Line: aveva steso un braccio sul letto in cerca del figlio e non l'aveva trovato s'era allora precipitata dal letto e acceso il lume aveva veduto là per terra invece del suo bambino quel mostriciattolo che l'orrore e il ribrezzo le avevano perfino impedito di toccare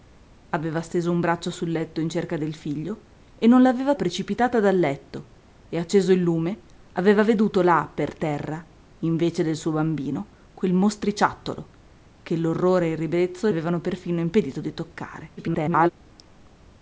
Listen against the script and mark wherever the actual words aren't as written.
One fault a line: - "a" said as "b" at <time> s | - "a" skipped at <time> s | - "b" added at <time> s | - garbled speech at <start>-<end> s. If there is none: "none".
- "trovato s'era allora" skipped at 3.9 s
- "le" skipped at 13.5 s
- garbled speech at 15.4-15.9 s